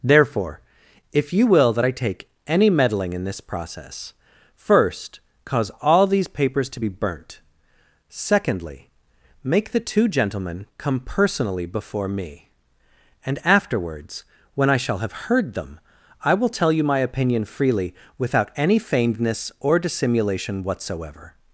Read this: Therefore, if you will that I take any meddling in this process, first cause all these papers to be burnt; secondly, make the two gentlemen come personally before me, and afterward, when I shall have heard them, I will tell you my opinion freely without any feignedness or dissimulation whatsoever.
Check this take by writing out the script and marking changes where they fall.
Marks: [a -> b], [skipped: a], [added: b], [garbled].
Therefore, if you will that I take any meddling in this process, first cause all these papers to be burnt; secondly, make the two gentlemen come personally before me, and [afterward, -> afterwards] when I shall have heard them, I will tell you my opinion freely without any feignedness or dissimulation whatsoever.